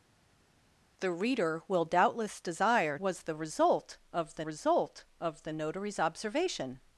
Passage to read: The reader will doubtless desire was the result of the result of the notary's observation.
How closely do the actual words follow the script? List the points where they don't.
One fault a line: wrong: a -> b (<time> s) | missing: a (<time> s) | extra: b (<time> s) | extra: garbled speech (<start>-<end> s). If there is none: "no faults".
no faults